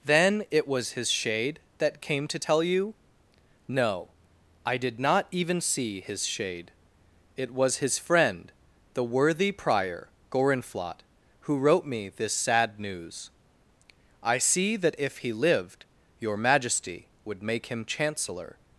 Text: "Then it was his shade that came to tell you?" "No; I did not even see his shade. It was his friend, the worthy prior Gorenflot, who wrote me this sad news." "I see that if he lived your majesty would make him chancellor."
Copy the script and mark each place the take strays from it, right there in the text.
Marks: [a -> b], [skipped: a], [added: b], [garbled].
"Then it was his shade that came to tell you?" "No; I did not even see his shade. It was his friend, the worthy prior Gorenflot, who wrote me this sad news." "I see that if he lived your majesty would make him chancellor."